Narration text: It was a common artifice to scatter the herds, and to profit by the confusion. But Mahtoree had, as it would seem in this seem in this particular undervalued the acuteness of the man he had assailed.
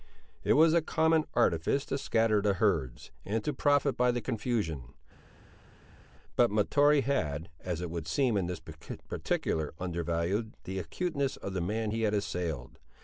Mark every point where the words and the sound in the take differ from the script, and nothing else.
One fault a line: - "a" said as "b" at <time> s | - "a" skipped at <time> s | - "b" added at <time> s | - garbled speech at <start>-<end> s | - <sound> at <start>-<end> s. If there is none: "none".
- "seem in this" skipped at 8.6 s